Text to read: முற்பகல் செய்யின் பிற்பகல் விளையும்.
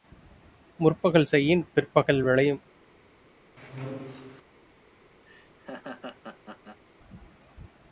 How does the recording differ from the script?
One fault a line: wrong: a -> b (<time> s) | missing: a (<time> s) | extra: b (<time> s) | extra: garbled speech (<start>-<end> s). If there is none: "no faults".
no faults